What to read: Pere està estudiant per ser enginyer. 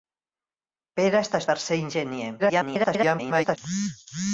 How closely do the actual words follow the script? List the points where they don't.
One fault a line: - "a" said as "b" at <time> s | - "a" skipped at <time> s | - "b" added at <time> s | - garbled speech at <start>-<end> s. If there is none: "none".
- "estudiant" skipped at 1.4 s
- garbled speech at 2.4-3.6 s